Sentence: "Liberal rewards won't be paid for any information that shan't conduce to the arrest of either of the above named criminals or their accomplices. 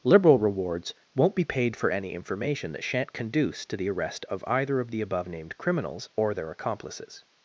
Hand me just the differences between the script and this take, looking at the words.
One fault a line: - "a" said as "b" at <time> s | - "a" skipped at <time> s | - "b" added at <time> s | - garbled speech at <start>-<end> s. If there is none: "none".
none